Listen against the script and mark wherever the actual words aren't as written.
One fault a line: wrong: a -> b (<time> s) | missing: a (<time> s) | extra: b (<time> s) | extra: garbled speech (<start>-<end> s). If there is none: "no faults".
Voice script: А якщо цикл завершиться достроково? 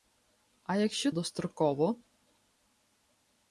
missing: цикл завершиться (1.1 s)